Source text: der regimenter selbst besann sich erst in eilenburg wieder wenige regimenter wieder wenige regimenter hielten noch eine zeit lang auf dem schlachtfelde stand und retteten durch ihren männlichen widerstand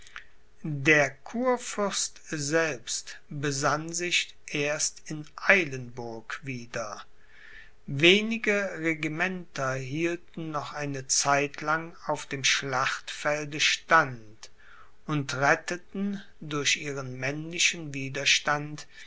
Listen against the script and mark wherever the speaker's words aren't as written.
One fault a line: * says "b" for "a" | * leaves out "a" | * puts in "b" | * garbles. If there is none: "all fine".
* says "kurfürst" for "regimenter"
* leaves out "wieder wenige regimenter"